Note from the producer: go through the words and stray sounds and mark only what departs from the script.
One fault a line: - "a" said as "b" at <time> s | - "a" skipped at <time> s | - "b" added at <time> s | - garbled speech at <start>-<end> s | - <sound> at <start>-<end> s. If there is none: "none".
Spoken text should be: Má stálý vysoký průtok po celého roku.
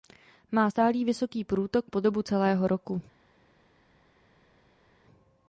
- "dobu" added at 2.0 s